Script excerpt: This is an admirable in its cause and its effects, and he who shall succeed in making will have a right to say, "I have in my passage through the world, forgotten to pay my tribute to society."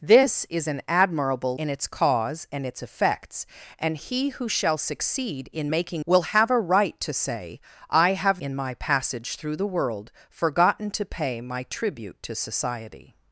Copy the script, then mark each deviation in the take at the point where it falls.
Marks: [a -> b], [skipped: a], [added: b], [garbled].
This is an admirable in its cause and its effects, and he who shall succeed in making will have a right to say, "I have in my passage through the world, forgotten to pay my tribute to society."